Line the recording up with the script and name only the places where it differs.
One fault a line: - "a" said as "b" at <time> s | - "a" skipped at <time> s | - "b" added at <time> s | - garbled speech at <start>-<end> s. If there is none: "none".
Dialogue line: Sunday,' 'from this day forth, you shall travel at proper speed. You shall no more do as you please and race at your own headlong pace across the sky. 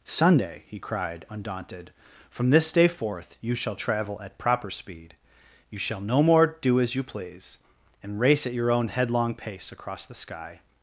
- "he cried undaunted" added at 0.7 s